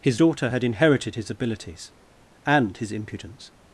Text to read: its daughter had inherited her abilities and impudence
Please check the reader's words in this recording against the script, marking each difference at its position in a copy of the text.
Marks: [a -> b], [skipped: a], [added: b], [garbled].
[its -> his] daughter had inherited [her -> his] abilities and [added: his] impudence